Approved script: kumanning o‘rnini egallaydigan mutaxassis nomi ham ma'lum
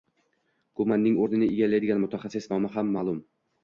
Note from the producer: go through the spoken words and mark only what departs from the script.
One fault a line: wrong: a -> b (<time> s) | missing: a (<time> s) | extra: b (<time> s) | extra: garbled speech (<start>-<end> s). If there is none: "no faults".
no faults